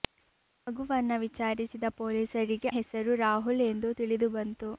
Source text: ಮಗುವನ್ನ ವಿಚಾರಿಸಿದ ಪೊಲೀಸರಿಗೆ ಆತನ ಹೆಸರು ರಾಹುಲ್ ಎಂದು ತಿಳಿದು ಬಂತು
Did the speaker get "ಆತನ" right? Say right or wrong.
wrong